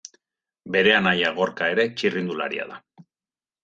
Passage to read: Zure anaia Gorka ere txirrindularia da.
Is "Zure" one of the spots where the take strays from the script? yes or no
yes